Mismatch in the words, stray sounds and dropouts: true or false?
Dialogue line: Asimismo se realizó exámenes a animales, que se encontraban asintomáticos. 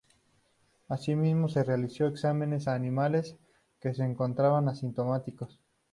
false